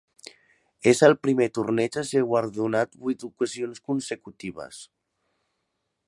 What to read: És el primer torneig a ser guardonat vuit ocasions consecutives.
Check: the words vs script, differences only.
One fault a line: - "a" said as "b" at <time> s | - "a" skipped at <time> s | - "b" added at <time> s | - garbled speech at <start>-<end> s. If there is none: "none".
none